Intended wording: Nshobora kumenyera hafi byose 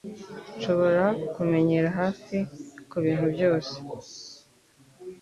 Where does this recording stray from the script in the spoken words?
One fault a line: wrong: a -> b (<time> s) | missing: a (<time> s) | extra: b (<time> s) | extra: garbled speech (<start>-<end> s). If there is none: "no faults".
extra: kubintu (2.9 s)